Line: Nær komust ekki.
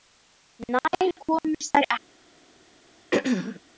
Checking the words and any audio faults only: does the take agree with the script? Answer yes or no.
no